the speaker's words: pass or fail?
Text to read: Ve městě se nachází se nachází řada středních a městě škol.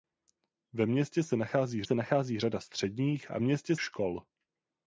pass